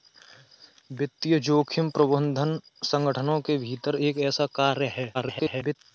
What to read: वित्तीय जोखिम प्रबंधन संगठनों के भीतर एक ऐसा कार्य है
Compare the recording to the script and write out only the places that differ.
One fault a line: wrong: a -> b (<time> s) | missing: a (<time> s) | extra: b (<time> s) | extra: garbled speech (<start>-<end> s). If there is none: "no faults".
extra: garbled speech (5.1-5.8 s)